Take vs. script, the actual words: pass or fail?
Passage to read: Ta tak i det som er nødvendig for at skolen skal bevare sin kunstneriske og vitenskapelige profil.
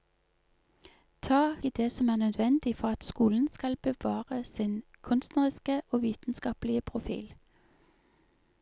fail